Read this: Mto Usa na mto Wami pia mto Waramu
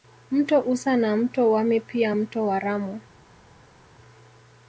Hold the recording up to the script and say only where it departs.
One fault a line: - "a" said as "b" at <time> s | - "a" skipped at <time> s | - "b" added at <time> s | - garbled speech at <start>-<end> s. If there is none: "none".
none